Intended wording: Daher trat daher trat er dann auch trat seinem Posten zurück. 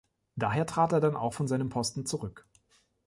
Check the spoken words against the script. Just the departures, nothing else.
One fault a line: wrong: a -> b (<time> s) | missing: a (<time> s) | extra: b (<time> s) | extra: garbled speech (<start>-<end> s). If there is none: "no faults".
missing: daher trat (0.9 s)
wrong: trat -> von (1.3 s)